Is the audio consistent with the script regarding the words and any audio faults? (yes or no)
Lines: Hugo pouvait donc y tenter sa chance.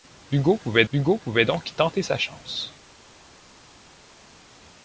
no